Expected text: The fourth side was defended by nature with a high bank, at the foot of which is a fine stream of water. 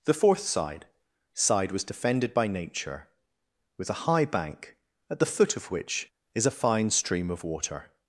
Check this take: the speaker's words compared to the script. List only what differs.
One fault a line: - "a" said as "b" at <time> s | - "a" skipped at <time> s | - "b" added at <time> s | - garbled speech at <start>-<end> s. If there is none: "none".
- "side" added at 1.4 s